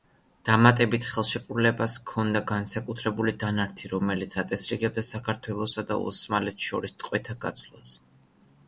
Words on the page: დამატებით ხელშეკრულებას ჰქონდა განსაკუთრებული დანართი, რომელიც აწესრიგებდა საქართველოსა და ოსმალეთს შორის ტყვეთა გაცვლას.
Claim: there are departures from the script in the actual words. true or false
false